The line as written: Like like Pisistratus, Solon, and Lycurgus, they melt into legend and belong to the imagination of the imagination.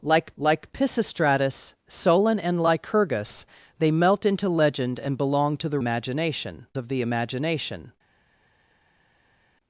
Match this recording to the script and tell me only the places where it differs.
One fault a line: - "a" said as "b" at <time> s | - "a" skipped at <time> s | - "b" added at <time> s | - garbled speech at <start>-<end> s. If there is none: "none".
none